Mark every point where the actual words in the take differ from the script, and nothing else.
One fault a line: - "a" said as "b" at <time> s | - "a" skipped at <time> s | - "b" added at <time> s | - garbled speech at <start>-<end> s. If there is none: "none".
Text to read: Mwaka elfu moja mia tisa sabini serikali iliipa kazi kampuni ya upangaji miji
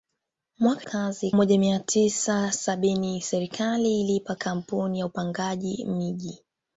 - "elfu" said as "kazi" at 0.8 s
- "kazi" skipped at 4.3 s